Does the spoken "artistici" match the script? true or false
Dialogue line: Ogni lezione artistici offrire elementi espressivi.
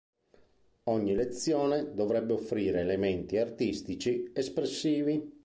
false